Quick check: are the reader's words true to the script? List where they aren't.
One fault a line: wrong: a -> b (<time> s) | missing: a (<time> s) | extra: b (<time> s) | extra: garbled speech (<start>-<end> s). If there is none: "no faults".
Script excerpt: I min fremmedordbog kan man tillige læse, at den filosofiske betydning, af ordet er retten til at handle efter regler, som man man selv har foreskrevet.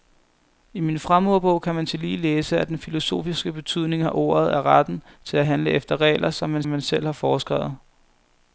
no faults